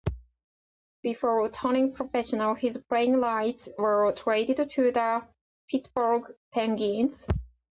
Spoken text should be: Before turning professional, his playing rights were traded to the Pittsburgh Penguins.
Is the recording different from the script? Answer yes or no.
no